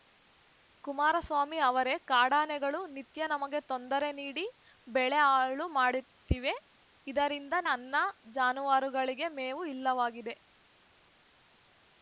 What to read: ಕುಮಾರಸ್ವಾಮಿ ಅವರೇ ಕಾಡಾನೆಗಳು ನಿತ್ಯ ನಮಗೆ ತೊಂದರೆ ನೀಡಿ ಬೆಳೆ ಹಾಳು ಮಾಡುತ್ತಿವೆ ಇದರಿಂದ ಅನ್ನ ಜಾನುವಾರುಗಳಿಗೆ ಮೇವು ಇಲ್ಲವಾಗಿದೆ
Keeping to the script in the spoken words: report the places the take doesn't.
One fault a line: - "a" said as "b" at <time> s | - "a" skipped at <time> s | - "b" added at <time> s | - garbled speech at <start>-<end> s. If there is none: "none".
none